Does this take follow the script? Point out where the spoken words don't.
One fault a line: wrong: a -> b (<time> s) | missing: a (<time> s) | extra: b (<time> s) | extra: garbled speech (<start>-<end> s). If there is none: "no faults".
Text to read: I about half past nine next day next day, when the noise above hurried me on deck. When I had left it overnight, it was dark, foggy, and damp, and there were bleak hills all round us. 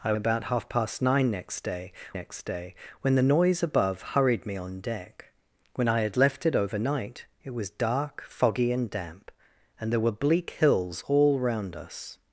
no faults